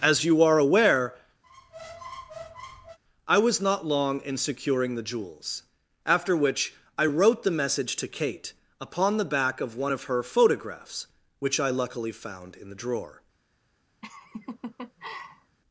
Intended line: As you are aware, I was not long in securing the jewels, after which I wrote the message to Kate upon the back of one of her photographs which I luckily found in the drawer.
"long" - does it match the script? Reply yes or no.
yes